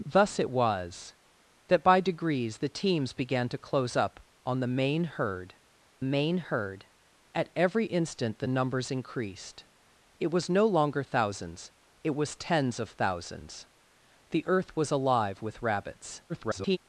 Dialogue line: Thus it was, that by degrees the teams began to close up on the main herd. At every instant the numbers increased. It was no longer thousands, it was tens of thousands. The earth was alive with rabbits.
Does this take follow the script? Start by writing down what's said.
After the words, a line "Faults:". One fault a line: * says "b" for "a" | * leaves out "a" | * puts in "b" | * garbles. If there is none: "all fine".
Thus it was, that by degrees the teams began to close up on the main herd main herd. At every instant the numbers increased. It was no longer thousands, it was tens of thousands. The earth was alive with rabbits. [garbled]
Faults:
* puts in "main herd"
* garbles